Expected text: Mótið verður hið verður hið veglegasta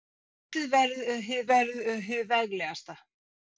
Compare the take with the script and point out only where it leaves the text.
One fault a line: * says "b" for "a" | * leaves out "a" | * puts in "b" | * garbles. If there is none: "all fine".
all fine